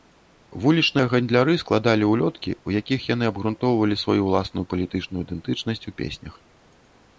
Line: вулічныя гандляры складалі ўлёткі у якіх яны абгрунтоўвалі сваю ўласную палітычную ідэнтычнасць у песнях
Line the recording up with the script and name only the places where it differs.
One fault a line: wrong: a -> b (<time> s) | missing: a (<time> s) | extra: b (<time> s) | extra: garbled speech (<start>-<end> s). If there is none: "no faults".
no faults